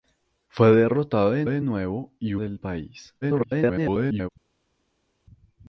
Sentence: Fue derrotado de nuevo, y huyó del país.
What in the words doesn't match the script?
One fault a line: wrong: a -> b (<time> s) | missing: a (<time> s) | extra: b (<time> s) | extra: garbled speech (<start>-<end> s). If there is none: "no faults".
extra: de (1.4 s)
missing: huyó (2.4 s)
extra: garbled speech (3.2-4.3 s)